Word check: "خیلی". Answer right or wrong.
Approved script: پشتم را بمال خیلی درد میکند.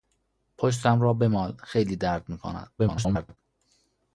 right